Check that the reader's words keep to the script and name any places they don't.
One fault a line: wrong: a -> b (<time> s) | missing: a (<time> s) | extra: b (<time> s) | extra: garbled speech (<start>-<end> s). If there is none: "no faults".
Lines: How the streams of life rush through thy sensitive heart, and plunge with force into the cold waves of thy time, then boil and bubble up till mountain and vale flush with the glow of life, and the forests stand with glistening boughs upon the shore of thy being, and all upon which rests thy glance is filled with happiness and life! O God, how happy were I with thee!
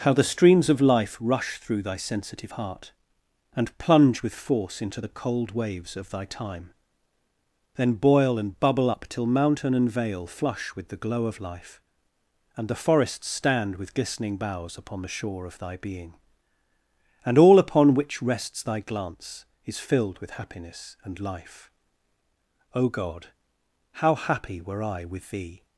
no faults